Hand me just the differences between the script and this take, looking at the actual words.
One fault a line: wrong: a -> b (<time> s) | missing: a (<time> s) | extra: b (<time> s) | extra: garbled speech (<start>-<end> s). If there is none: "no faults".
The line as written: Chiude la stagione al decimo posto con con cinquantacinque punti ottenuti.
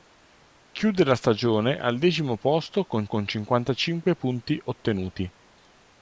no faults